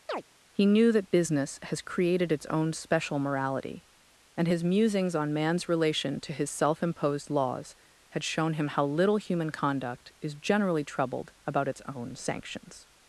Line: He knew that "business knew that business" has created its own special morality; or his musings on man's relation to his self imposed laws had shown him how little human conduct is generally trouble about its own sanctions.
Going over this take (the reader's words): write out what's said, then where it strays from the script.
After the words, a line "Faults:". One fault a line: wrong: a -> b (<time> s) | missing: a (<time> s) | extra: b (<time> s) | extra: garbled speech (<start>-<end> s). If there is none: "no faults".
He knew that "business" has created its own special morality; and his musings on man's relation to his self imposed laws had shown him how little human conduct is generally troubled about its own sanctions.
Faults:
missing: knew that business (1.6 s)
wrong: or -> and (4.4 s)
wrong: trouble -> troubled (10.8 s)